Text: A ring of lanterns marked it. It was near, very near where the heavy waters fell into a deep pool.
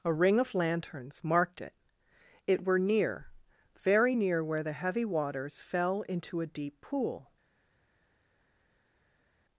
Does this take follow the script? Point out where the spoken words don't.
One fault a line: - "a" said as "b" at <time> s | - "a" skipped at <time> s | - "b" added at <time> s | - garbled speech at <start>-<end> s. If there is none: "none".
- "was" said as "were" at 2.6 s